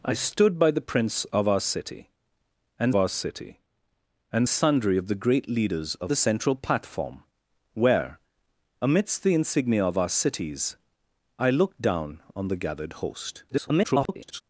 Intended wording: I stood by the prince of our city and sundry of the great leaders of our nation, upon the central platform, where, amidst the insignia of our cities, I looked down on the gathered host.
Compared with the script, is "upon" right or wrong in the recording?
wrong